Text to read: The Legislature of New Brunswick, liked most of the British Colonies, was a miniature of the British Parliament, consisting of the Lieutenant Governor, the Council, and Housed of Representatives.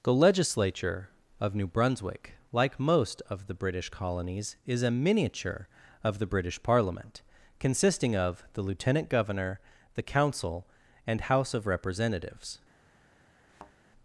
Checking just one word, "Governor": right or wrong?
right